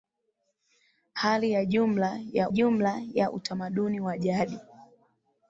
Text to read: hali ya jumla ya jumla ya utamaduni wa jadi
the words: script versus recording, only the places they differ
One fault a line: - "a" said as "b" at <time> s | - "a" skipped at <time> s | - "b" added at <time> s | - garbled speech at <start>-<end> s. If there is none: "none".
none